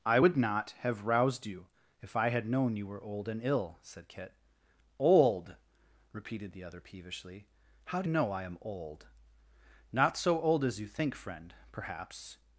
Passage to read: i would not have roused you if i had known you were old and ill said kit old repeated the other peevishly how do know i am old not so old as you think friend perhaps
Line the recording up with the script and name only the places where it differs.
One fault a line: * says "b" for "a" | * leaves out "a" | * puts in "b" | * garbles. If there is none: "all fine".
all fine